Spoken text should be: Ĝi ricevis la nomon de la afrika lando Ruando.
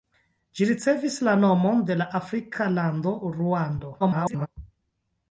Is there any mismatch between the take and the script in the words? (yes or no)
yes